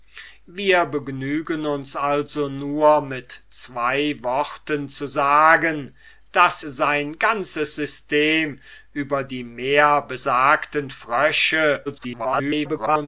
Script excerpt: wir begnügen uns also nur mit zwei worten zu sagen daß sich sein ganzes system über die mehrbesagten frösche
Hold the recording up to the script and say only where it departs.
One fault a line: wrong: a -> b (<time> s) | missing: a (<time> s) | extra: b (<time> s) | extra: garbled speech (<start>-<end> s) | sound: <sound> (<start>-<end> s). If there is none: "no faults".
missing: sich (6.6 s)
extra: garbled speech (11.9-13.1 s)